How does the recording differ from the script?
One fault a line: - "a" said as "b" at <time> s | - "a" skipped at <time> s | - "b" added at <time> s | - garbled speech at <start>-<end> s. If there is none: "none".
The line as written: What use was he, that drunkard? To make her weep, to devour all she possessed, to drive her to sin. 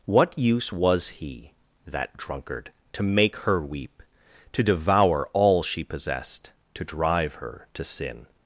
none